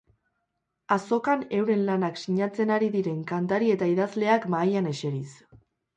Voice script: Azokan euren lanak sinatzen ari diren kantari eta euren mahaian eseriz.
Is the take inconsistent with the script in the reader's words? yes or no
yes